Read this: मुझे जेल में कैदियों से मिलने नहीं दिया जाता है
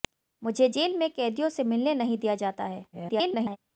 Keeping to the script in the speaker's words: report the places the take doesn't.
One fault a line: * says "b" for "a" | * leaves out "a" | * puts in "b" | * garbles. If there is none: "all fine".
* garbles